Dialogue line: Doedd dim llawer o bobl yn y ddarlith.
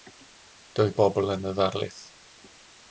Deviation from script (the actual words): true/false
true